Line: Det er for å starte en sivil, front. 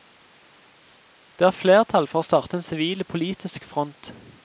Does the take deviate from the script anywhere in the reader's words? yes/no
yes